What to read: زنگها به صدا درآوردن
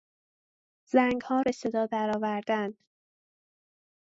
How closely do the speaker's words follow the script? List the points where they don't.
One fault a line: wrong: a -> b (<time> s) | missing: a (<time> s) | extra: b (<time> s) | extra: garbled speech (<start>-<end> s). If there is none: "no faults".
no faults